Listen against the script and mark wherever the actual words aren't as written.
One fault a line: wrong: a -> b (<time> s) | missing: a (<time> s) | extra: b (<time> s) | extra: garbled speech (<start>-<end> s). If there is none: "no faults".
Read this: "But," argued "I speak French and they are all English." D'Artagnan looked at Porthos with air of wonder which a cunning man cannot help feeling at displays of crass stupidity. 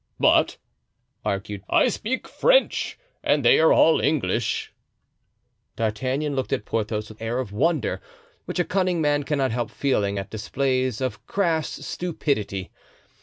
no faults